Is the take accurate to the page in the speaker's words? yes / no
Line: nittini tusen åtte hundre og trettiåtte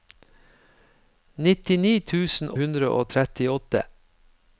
no